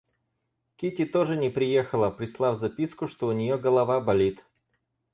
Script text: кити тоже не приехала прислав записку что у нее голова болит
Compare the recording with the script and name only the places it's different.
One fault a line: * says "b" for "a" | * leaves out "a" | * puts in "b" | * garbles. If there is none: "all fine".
all fine